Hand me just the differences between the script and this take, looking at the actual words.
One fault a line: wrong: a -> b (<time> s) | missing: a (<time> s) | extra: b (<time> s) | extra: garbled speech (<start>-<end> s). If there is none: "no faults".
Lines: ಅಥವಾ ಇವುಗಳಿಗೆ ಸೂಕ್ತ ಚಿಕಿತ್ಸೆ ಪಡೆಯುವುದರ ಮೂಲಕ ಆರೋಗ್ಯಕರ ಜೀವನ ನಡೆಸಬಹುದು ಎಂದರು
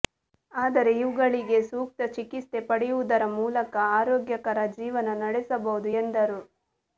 wrong: ಅಥವಾ -> ಆದರೆ (0.5 s)